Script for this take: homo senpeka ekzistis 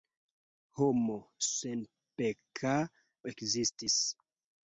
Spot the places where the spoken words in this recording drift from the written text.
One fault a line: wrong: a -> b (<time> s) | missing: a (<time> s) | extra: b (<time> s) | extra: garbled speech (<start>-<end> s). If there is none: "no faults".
no faults